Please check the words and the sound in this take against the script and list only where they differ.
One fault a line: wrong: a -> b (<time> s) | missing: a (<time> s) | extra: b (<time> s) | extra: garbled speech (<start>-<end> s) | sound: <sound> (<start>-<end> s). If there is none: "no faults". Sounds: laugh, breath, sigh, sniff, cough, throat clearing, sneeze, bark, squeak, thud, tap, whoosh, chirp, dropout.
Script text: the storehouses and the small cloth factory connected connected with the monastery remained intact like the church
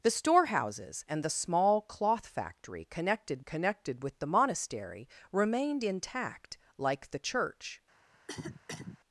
sound: cough (8.1-9.0 s)